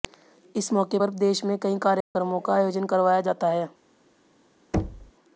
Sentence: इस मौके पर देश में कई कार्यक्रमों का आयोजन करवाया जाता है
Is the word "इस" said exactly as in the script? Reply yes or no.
yes